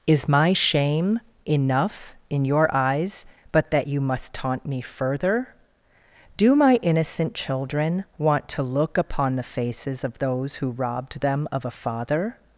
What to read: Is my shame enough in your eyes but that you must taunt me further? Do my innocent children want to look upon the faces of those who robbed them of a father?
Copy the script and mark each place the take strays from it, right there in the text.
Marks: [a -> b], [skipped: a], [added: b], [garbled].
Is my shame enough in your eyes but that you must taunt me further? Do my innocent children want to look upon the faces of those who robbed them of a father?